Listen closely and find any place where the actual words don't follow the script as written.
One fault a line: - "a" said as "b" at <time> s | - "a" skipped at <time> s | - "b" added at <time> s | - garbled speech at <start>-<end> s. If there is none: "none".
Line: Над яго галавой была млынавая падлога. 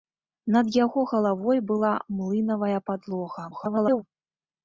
- garbled speech at 3.5-4.0 s